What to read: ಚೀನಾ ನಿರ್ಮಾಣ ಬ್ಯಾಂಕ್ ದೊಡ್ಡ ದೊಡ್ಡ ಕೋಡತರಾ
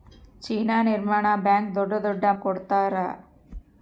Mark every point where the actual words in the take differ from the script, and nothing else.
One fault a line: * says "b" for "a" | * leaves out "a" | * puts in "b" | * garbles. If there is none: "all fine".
all fine